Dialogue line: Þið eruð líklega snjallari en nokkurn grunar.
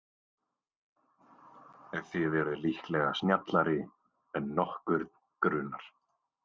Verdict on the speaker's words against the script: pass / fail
pass